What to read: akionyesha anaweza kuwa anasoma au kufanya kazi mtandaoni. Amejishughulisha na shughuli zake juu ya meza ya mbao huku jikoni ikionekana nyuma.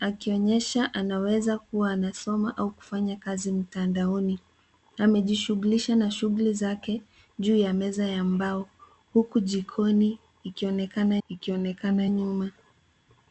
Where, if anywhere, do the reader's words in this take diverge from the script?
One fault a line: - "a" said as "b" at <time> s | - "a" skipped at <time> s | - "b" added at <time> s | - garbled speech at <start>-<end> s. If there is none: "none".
- "ikionekana" added at 11.3 s